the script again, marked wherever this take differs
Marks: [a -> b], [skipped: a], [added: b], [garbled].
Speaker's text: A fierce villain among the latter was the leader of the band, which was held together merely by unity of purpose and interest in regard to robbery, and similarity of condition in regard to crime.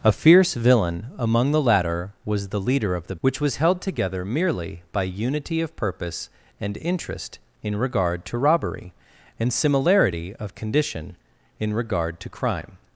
A fierce villain among the latter was the leader of the [skipped: band,] which was held together merely by unity of purpose and interest in regard to robbery, and similarity of condition in regard to crime.